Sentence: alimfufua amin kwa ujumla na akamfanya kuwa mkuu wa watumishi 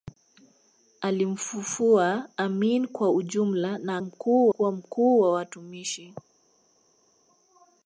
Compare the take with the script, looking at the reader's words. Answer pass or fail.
fail